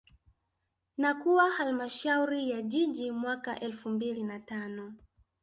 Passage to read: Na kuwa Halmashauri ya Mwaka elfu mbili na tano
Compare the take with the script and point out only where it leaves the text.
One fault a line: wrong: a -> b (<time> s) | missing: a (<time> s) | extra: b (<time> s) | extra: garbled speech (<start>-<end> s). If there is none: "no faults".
extra: Jiji (2.6 s)